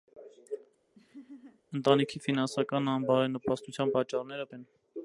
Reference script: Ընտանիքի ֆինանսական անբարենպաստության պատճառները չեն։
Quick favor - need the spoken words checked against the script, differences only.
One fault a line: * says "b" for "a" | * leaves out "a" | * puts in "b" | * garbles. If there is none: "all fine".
all fine